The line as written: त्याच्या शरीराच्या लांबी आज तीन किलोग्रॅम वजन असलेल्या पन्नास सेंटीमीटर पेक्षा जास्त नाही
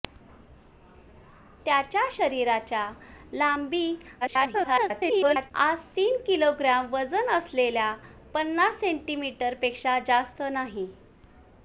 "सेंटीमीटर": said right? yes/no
yes